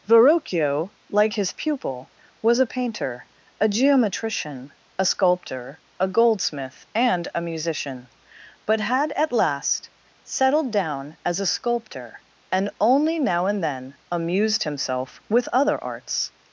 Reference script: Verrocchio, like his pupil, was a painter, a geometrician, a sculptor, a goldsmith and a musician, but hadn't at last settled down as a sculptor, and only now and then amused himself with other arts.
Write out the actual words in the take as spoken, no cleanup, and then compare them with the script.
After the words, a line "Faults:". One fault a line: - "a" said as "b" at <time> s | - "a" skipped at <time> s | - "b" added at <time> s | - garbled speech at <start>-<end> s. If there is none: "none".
Verrocchio, like his pupil, was a painter, a geometrician, a sculptor, a goldsmith and a musician, but had at last settled down as a sculptor, and only now and then amused himself with other arts.
Faults:
- "hadn't" said as "had" at 8.8 s